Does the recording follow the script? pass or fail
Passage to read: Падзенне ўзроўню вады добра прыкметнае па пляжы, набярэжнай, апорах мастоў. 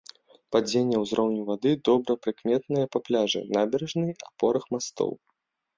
pass